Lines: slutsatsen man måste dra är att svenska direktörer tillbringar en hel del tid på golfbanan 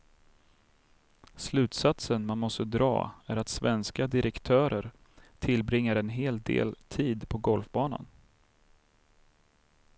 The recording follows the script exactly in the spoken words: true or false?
true